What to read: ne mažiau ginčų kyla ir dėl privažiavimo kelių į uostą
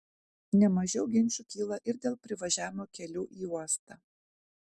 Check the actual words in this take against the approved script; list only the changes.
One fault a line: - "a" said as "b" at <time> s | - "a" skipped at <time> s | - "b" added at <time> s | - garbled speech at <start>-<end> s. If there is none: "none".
none